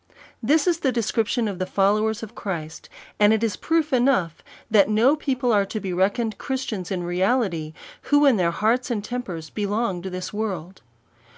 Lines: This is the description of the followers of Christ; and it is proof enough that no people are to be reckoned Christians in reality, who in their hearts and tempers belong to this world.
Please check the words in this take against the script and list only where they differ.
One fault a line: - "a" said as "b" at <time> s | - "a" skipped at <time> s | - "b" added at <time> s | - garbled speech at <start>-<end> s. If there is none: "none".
none